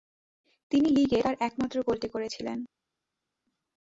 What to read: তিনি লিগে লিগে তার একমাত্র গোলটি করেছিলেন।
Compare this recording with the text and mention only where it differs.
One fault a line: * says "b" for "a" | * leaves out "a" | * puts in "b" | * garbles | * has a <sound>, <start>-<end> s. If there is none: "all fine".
* leaves out "লিগে"